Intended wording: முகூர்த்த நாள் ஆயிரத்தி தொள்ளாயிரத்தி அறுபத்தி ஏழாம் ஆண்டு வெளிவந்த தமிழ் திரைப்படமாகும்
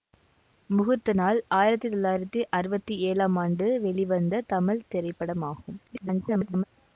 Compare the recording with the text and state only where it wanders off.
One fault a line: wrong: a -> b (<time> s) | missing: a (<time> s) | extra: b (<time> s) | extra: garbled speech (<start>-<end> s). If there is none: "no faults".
extra: garbled speech (5.9-6.6 s)